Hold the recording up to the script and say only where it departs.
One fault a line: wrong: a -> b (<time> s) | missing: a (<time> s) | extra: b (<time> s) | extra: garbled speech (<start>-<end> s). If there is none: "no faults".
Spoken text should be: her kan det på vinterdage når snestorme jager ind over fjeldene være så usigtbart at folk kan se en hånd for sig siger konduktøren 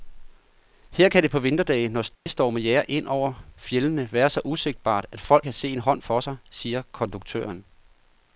no faults